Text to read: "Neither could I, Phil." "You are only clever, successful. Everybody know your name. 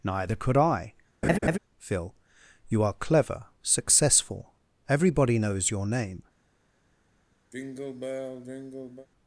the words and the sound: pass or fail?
fail